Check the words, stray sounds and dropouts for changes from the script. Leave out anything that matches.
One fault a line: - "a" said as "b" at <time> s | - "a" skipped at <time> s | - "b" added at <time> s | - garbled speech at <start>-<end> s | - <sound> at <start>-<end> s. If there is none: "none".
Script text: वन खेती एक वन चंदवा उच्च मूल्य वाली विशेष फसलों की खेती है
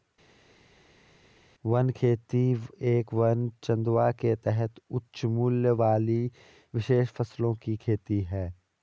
- "के तहत" added at 4.1 s